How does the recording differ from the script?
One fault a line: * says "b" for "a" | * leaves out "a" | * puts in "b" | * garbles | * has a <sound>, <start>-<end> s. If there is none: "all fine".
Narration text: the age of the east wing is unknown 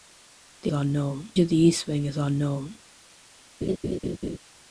* says "unknown" for "age"
* has a laugh, 3.6-4.4 s